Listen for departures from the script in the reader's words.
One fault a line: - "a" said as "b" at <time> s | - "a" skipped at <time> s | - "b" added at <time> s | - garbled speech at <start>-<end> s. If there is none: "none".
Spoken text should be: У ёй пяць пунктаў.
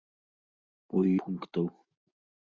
- "ёй пяць" skipped at 1.0 s